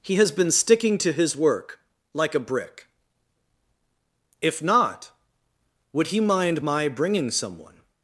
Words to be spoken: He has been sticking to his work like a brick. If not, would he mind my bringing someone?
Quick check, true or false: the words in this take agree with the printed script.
true